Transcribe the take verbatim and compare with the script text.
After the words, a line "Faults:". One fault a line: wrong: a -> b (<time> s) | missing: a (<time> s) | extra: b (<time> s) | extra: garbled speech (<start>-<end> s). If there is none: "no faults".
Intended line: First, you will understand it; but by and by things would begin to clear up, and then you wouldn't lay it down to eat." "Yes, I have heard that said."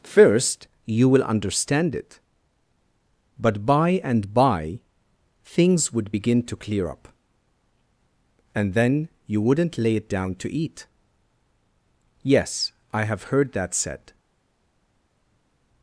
First, you will understand it; but by and by things would begin to clear up, and then you wouldn't lay it down to eat." "Yes, I have heard that said."
Faults:
no faults